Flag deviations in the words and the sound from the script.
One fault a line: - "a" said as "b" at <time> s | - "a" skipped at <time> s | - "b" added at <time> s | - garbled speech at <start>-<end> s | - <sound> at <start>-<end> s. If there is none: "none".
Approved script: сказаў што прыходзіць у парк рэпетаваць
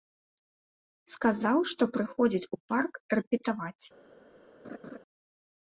- laugh at 4.6-5.0 s